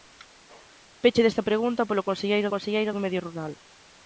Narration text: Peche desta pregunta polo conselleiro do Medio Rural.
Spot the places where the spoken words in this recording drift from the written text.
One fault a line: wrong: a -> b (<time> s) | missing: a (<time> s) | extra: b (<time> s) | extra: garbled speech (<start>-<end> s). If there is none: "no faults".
extra: conselleiro (2.5 s)